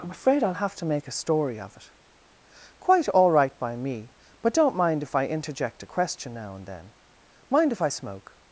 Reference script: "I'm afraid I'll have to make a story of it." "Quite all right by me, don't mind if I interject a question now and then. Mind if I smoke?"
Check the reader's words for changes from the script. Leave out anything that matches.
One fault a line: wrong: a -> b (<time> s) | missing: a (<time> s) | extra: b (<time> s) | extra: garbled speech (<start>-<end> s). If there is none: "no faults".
extra: but (4.4 s)